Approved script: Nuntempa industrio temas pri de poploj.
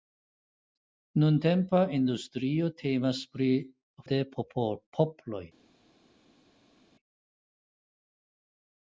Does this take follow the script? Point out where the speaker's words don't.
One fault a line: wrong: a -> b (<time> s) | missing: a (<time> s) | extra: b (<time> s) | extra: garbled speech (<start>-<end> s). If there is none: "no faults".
no faults